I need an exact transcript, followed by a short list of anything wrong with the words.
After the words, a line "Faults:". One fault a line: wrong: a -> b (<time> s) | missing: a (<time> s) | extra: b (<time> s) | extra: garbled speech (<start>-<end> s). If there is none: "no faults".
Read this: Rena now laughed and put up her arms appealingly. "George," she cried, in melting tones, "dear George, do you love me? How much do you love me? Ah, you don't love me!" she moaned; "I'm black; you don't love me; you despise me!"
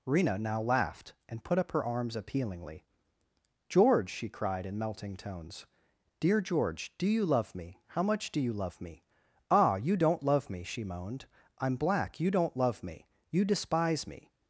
Rena now laughed and put up her arms appealingly. "George," she cried, in melting tones, "dear George, do you love me? How much do you love me? Ah, you don't love me!" she moaned; "I'm black; you don't love me; you despise me!"
Faults:
no faults